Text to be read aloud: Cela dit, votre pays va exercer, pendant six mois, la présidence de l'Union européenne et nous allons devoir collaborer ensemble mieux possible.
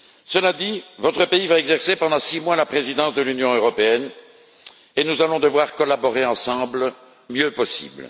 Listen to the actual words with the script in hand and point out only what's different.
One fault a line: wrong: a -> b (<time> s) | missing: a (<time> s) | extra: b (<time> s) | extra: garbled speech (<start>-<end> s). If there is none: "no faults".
no faults